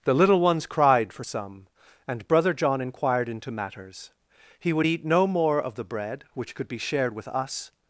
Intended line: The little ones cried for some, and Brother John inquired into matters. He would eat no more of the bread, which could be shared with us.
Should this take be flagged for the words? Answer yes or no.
no